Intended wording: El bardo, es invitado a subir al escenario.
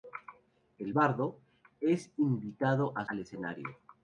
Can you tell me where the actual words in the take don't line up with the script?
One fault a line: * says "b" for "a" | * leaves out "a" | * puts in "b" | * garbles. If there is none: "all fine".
* leaves out "subir"